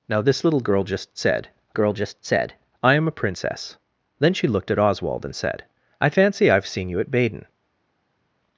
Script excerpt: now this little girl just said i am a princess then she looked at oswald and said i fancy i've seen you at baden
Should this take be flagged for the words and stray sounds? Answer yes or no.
yes